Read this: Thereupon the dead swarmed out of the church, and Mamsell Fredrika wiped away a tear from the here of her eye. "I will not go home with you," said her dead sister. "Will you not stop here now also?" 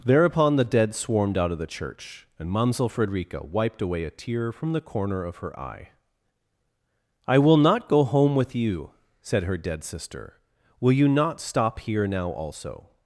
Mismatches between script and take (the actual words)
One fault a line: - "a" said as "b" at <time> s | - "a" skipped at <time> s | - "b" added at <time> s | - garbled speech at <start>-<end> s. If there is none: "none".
- "here" said as "corner" at 4.8 s